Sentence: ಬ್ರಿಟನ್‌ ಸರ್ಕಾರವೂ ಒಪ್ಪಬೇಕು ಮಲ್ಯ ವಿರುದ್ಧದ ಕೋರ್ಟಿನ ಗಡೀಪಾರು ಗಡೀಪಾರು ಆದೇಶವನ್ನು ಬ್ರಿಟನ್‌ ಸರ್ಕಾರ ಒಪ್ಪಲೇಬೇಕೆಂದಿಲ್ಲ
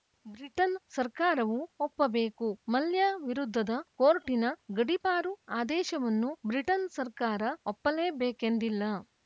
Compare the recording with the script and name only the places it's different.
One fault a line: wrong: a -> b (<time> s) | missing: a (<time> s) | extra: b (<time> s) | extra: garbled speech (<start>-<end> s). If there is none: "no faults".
missing: ಗಡೀಪಾರು (5.3 s)